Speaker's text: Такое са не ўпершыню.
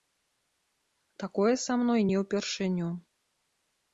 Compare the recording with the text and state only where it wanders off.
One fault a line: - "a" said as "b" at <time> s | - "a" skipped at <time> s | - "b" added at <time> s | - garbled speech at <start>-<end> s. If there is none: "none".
- "мной" added at 1.8 s